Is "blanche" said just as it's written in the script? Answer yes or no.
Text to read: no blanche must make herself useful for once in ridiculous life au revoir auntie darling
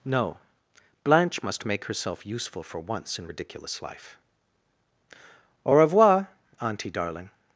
yes